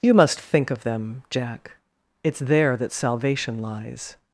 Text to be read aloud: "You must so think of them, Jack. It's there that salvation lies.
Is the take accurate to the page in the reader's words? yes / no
no